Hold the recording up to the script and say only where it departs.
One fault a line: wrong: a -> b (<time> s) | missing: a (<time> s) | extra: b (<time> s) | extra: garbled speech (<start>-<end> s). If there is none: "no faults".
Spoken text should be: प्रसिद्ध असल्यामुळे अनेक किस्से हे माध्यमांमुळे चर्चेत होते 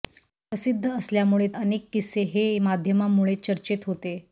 no faults